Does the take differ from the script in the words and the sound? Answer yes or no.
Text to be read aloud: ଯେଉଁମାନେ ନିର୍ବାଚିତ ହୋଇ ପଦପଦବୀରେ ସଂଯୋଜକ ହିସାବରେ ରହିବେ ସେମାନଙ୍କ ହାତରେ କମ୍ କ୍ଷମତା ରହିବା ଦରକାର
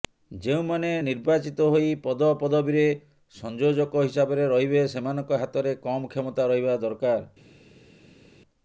no